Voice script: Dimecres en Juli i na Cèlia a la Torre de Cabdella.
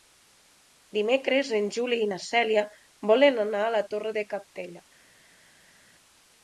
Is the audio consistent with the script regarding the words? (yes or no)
no